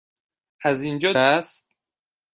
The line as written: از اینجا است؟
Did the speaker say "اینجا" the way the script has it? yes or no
yes